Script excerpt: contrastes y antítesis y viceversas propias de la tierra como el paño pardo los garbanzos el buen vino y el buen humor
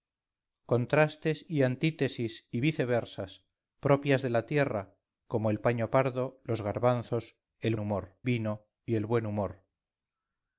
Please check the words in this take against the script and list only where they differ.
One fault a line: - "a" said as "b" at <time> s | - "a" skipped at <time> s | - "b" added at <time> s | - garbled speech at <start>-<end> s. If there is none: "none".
- "buen" said as "humor" at 7.8 s